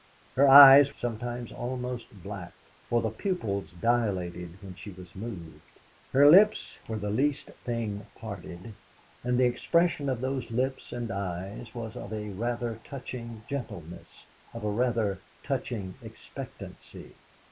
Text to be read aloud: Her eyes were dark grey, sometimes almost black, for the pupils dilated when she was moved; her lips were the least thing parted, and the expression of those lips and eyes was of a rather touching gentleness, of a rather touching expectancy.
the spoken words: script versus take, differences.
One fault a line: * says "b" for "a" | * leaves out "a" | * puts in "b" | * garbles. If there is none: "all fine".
* leaves out "were dark grey"